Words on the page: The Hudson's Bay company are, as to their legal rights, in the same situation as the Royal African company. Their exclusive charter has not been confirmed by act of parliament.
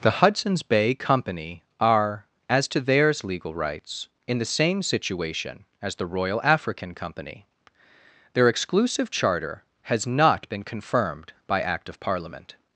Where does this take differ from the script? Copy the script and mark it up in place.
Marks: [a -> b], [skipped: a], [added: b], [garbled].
The Hudson's Bay company are, as to [their -> theirs] legal rights, in the same situation as the Royal African company. Their exclusive charter has not been confirmed by act of parliament.